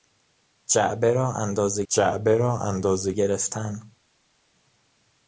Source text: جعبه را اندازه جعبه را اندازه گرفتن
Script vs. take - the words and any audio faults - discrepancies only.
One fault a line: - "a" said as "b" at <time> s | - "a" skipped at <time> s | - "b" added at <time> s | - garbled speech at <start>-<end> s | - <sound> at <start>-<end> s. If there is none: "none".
none